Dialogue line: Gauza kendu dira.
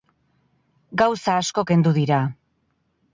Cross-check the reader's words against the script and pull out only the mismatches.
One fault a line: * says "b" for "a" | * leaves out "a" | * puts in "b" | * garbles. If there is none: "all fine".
* puts in "asko"